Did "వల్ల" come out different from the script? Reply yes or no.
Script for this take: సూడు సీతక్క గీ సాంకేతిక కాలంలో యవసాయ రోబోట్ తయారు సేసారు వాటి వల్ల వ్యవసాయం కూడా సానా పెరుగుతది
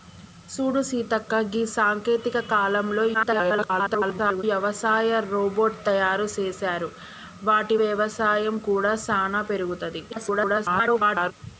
yes